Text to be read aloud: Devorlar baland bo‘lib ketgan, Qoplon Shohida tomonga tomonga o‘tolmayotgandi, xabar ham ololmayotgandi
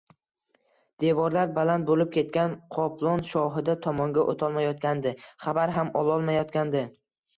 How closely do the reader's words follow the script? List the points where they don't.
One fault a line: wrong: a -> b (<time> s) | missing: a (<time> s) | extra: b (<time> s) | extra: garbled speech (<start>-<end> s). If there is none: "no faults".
missing: tomonga (4.2 s)